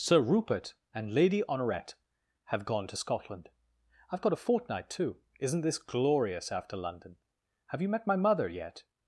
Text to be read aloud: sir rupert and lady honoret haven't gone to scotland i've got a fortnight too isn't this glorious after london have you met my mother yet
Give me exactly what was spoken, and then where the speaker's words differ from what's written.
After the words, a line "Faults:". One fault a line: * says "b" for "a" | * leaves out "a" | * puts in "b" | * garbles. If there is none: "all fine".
sir rupert and lady honoret have gone to scotland i've got a fortnight too isn't this glorious after london have you met my mother yet
Faults:
* says "have" for "haven't"